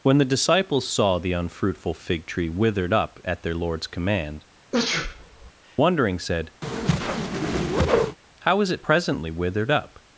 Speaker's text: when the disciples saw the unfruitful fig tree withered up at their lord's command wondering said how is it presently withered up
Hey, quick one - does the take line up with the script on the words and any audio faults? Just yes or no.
no